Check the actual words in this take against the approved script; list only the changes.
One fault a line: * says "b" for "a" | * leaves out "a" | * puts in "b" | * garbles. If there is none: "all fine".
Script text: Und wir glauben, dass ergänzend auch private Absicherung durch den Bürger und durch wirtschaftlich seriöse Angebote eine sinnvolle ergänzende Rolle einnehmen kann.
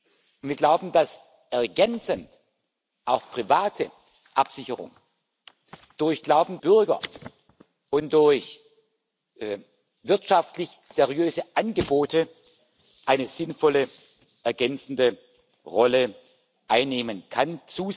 * says "glauben" for "den"